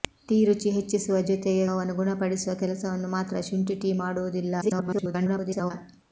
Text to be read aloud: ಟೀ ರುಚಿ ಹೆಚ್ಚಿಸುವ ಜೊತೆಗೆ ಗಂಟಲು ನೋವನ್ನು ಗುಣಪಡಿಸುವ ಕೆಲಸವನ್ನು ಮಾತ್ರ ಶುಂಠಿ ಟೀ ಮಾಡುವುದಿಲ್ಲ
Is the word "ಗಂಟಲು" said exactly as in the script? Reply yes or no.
no